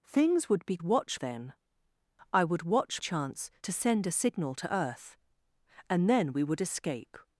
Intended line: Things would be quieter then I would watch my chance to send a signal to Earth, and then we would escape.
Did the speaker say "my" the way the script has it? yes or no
no